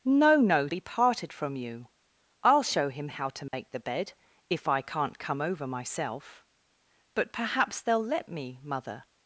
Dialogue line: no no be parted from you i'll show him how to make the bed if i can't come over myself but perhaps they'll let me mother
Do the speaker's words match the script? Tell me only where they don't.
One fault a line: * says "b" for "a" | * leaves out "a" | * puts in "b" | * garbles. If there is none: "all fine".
all fine